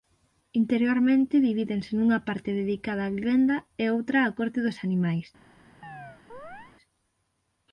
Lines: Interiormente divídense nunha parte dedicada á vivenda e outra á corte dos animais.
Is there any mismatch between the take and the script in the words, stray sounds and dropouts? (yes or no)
yes